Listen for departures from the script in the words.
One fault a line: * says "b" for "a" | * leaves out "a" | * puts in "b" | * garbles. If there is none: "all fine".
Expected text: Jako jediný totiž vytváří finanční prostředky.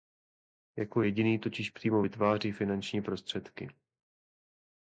* puts in "přímo"